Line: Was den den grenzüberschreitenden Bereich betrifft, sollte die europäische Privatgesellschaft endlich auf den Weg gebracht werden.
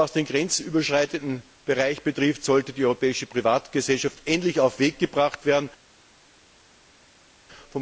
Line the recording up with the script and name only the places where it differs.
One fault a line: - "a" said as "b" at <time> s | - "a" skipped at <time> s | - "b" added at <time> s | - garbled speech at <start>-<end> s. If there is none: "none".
- "den" skipped at 0.2 s